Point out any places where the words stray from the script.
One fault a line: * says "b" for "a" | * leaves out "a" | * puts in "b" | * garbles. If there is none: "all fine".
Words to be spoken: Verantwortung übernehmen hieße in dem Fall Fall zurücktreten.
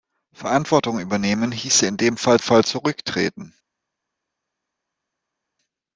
all fine